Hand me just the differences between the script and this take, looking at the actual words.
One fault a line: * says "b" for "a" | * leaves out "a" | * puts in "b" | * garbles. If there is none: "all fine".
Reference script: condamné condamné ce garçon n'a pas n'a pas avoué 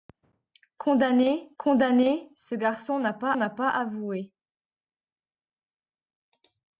all fine